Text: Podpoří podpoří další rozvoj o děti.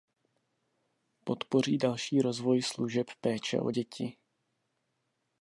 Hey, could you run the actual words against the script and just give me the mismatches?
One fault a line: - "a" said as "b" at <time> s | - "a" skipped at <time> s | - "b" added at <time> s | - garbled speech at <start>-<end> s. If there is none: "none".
- "podpoří" skipped at 1.8 s
- "služeb péče" added at 2.6 s